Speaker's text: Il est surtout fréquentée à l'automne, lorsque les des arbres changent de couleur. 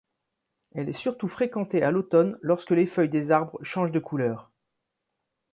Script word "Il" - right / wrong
wrong